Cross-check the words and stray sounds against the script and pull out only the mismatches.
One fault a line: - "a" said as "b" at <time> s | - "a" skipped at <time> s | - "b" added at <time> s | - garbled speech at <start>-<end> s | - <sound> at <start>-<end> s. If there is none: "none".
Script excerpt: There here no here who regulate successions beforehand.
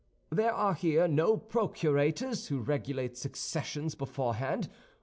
- "are" added at 0.5 s
- "here" said as "procurators" at 1.4 s